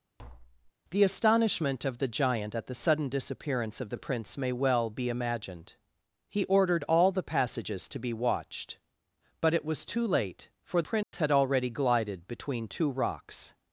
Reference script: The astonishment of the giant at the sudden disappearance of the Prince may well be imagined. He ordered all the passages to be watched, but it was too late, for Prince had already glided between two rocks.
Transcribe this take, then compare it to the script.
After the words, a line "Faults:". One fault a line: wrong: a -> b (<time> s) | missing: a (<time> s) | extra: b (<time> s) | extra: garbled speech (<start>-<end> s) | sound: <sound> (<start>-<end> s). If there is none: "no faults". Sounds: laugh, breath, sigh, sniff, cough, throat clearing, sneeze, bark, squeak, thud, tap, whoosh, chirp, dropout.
The astonishment of the giant at the sudden disappearance of the Prince may well be imagined. He ordered all the passages to be watched, but it was too late, for Prince had already glided between two rocks.
Faults:
sound: tap (0.2-0.7 s)
sound: dropout (11.0-11.1 s)